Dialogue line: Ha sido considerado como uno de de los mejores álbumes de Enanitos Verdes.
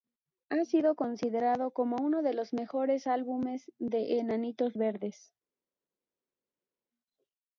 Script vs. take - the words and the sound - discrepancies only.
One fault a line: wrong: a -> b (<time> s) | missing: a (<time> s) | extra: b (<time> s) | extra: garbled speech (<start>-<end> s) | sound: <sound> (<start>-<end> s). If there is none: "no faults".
missing: de (2.3 s)